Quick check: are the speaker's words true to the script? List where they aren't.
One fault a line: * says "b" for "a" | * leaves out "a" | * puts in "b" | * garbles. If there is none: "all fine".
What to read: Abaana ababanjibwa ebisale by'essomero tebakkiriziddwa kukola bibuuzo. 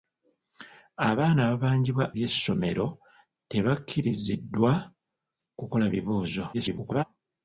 * leaves out "ebisale"
* garbles